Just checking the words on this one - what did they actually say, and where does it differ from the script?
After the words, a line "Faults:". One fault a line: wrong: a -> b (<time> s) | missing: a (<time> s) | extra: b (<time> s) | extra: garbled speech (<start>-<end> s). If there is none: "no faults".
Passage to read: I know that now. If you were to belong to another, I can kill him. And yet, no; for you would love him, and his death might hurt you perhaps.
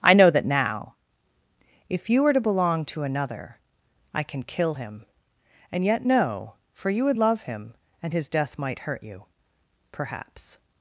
I know that now. If you were to belong to another, I can kill him. And yet, no; for you would love him, and his death might hurt you perhaps.
Faults:
no faults